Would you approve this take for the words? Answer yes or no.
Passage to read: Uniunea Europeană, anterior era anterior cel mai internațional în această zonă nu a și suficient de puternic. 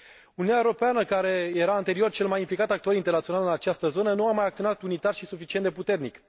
no